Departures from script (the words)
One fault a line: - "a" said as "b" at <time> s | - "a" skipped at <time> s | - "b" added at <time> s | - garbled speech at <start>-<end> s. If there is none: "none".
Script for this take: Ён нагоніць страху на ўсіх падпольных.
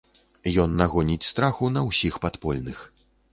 none